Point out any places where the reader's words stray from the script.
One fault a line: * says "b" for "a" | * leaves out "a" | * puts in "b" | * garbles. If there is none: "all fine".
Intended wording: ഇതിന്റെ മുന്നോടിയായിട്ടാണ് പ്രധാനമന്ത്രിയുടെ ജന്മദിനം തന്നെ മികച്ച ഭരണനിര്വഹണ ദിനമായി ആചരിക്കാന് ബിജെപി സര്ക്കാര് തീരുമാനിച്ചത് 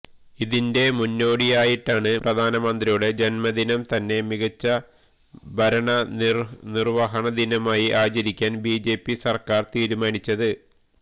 all fine